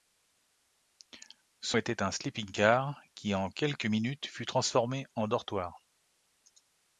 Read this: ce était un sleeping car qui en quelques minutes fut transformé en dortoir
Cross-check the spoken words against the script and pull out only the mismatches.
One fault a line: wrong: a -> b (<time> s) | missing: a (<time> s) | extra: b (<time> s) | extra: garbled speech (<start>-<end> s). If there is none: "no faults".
no faults